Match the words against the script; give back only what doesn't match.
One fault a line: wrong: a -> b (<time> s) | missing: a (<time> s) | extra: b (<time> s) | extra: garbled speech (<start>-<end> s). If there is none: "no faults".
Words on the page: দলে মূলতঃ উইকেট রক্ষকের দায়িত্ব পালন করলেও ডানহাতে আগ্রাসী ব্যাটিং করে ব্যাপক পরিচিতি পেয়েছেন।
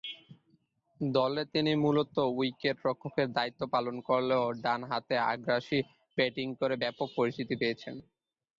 extra: তিনি (1.5 s)